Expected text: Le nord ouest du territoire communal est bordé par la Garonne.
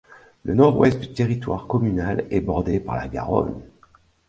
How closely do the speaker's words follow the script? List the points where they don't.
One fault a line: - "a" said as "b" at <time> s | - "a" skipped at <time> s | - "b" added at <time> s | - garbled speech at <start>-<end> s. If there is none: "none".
none